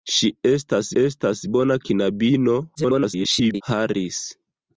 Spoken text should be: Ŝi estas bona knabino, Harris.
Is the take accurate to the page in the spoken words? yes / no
no